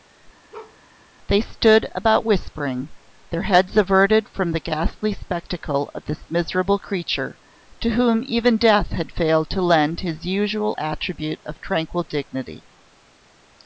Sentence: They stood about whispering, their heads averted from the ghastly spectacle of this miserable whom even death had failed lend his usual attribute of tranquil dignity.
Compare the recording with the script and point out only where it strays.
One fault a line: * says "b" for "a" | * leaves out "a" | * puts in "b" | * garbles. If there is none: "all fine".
* puts in "creature to"
* puts in "to"